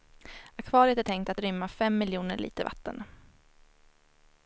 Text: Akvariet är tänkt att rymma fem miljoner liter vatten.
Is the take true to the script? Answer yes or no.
yes